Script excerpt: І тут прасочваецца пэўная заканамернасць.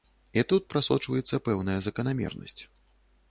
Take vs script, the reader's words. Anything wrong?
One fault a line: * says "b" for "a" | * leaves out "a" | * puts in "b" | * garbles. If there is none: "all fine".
all fine